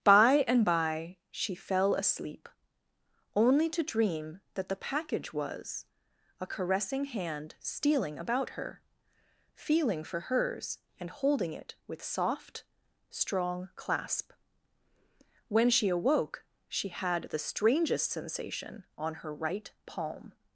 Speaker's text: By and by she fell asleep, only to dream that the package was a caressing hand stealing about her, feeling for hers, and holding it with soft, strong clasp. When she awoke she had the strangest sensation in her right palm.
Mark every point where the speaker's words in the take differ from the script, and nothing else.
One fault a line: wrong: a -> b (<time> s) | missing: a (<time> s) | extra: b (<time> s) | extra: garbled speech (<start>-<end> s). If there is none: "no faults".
wrong: in -> on (19.0 s)